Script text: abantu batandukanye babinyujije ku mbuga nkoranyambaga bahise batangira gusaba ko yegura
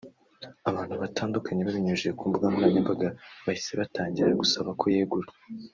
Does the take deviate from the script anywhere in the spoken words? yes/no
no